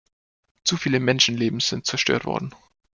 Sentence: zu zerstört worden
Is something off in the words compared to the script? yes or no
yes